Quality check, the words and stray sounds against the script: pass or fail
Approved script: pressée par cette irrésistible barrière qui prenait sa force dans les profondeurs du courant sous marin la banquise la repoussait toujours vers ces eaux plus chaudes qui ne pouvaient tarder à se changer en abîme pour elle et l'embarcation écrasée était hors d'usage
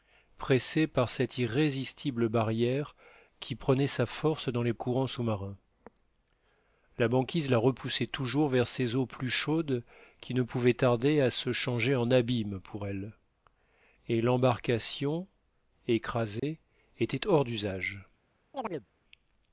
fail